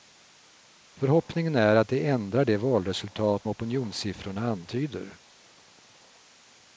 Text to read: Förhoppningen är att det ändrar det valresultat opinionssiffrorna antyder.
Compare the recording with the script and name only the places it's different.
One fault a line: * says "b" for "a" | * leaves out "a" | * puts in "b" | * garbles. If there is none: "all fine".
all fine